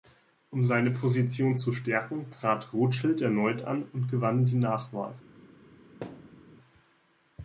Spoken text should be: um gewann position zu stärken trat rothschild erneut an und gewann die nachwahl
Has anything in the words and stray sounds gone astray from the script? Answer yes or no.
yes